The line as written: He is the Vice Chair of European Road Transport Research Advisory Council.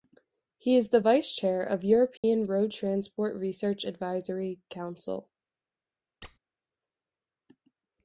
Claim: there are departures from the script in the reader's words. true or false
false